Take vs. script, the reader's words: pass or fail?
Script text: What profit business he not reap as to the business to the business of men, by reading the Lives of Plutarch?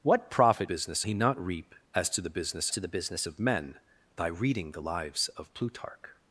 pass